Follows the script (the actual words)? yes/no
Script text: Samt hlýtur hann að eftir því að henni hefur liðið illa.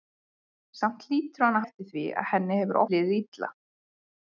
yes